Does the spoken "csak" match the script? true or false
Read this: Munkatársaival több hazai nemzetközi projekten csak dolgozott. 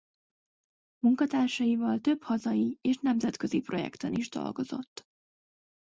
false